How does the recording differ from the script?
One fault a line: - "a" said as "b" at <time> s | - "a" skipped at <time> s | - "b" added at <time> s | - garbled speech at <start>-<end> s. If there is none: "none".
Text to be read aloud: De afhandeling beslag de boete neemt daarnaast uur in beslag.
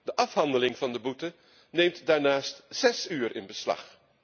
- "beslag" said as "van" at 0.8 s
- "zes" added at 2.7 s